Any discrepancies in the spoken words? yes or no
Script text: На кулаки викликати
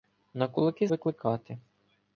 no